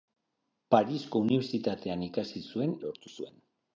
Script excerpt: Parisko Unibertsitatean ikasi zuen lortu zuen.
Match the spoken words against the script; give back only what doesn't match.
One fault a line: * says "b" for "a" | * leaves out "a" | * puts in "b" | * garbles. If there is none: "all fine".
all fine